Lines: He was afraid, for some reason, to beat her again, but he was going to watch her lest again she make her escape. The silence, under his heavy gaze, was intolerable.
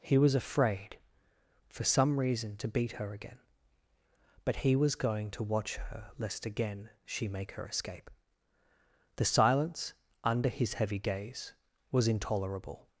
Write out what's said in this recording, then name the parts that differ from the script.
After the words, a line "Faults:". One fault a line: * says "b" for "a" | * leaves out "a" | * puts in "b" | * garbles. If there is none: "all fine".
He was afraid, for some reason, to beat her again, but he was going to watch her lest again she make her escape. The silence, under his heavy gaze, was intolerable.
Faults:
all fine